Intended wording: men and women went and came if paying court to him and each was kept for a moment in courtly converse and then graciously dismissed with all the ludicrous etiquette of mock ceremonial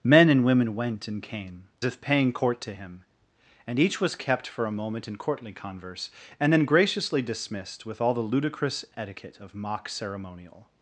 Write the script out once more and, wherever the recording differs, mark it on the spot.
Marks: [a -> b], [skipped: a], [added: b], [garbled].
men and women went and came if paying court to him and each was kept for a moment in courtly converse and then graciously dismissed with all the ludicrous etiquette of mock ceremonial